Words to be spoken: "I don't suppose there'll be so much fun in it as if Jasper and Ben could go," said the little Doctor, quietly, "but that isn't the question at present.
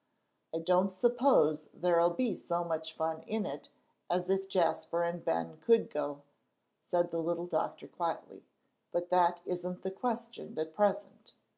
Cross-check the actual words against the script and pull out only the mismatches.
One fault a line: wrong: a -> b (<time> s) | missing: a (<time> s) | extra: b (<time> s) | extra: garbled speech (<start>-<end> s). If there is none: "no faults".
no faults